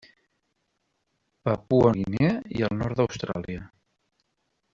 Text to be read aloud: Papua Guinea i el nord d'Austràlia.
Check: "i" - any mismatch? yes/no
no